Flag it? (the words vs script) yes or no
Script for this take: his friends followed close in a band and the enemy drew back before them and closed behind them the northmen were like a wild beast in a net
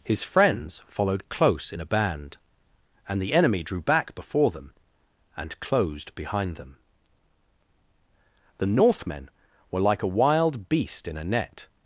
no